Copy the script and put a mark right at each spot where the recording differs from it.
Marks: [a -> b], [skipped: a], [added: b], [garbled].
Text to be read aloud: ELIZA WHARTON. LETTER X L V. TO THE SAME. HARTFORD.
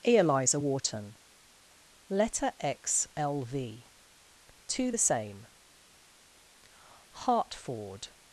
ELIZA WHARTON. LETTER X L V. TO THE SAME. HARTFORD.